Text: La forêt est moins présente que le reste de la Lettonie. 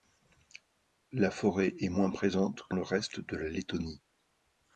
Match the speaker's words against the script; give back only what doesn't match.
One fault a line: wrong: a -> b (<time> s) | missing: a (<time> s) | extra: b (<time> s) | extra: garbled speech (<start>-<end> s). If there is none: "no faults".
no faults